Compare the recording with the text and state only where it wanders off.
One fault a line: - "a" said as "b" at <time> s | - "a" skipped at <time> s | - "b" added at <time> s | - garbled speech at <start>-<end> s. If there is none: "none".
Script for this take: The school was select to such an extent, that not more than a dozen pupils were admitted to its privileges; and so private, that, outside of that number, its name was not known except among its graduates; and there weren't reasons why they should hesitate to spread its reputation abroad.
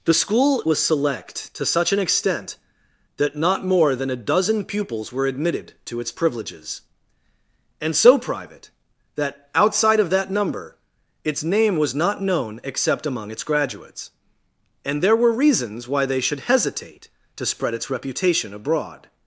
- "weren't" said as "were" at 15.2 s